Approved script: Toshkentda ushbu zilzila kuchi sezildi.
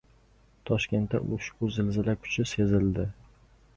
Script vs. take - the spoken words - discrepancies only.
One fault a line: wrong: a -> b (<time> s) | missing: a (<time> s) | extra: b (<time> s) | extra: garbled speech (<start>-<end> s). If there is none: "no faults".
no faults